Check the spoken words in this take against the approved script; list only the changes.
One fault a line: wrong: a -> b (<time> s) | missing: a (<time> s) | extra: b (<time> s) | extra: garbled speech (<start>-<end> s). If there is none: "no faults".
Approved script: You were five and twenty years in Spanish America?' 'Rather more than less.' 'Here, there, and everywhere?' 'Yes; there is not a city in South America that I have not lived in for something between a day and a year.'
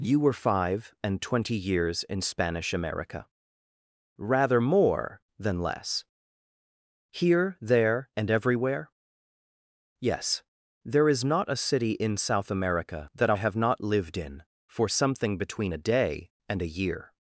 no faults